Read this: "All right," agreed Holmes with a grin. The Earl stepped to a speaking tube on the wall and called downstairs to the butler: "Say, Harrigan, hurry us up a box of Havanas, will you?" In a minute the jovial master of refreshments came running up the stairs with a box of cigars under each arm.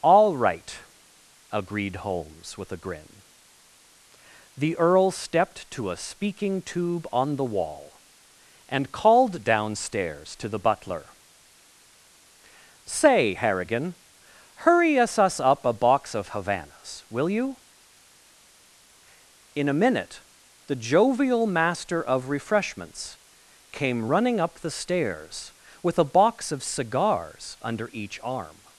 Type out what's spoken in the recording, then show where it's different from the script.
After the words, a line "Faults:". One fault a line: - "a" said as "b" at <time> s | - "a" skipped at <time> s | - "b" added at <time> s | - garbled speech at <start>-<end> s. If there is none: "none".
"All right," agreed Holmes with a grin. The Earl stepped to a speaking tube on the wall and called downstairs to the butler: "Say, Harrigan, hurry us us up a box of Havanas, will you?" In a minute the jovial master of refreshments came running up the stairs with a box of cigars under each arm.
Faults:
- "us" added at 15.2 s